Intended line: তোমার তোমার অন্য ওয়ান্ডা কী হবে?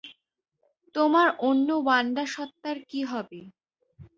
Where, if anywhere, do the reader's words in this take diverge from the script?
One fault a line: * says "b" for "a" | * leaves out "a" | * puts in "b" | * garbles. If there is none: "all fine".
* leaves out "তোমার"
* puts in "সত্তার"